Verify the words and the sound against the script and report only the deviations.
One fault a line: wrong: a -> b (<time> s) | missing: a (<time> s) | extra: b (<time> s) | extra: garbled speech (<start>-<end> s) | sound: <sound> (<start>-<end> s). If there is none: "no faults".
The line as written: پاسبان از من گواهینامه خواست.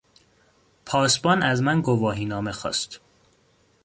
no faults